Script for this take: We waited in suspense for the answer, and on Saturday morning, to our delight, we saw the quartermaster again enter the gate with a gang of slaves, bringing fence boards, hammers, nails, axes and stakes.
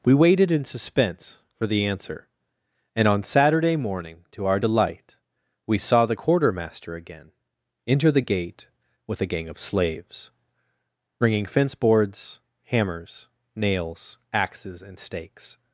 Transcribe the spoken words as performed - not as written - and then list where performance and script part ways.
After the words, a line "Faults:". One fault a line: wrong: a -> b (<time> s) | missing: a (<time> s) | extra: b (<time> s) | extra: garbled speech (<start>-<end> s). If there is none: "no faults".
We waited in suspense for the answer, and on Saturday morning, to our delight, we saw the quartermaster again enter the gate with a gang of slaves, bringing fence boards, hammers, nails, axes and stakes.
Faults:
no faults